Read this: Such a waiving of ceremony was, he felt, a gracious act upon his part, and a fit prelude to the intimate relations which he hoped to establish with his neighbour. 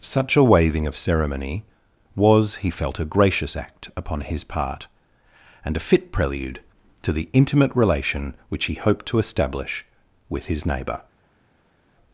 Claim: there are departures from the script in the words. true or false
true